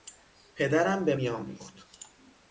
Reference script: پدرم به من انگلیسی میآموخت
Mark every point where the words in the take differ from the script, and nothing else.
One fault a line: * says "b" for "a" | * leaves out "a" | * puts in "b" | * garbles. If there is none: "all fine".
* leaves out "من انگلیسی"